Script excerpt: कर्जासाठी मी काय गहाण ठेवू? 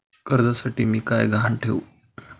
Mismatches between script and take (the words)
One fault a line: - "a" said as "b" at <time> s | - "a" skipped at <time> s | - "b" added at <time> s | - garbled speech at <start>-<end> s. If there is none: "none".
none